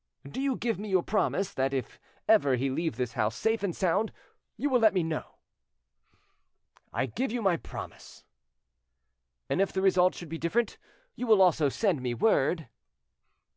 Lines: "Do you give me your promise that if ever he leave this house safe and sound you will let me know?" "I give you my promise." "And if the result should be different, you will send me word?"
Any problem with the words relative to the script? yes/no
yes